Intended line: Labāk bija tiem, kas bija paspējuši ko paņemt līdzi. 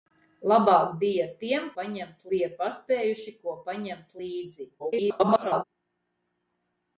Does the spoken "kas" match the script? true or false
false